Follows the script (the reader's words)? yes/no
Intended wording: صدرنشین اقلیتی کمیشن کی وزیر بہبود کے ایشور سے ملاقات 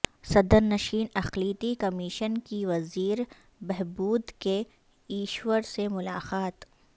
yes